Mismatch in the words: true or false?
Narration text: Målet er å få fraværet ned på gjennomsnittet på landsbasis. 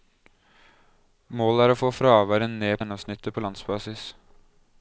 true